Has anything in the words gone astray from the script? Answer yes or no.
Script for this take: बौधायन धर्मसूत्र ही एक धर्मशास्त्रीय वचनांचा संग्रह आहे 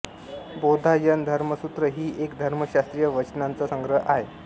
no